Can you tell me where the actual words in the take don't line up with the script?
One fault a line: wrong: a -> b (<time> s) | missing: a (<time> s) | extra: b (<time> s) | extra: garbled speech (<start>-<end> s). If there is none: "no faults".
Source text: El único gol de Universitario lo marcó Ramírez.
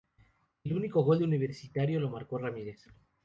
no faults